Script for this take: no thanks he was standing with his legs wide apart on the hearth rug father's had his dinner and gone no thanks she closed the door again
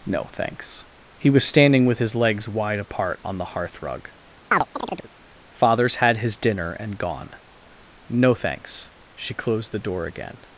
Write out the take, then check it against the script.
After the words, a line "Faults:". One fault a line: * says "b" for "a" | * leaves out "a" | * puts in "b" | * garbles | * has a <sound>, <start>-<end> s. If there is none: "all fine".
no thanks he was standing with his legs wide apart on the hearth rug father's had his dinner and gone no thanks she closed the door again
Faults:
* has a chirp, 4.5-5.1 s